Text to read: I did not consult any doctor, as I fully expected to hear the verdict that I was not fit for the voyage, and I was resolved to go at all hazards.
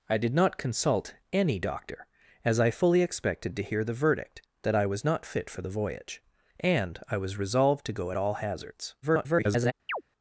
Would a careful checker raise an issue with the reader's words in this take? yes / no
yes